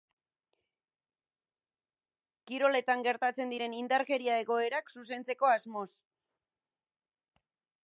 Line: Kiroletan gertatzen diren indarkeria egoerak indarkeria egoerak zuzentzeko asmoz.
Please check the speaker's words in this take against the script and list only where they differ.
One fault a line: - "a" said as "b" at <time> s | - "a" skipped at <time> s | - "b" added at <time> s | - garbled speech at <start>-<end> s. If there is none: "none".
- "indarkeria egoerak" skipped at 5.0 s